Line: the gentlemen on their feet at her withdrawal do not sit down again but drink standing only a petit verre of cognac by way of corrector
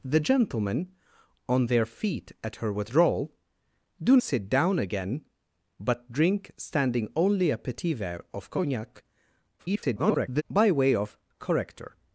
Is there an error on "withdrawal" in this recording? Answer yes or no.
no